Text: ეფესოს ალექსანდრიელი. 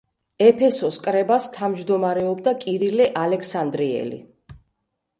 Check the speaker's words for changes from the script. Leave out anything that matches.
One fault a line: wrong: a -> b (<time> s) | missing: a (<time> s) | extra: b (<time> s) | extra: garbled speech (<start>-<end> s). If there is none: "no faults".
extra: კრებას თავმჯდომარეობდა კირილე (1.1 s)